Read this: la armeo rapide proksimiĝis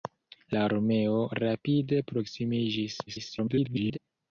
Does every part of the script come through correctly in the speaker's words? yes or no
no